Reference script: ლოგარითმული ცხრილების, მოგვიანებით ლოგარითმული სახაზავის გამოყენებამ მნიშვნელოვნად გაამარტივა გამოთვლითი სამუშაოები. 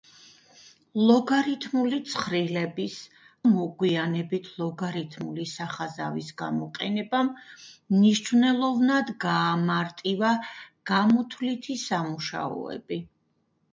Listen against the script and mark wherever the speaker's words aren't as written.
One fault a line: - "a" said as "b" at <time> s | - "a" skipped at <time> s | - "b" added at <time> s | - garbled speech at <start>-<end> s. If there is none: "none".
none